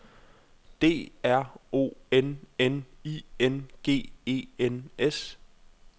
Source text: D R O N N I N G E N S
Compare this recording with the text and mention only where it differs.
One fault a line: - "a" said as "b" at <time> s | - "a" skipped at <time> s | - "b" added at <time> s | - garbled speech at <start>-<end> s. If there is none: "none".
none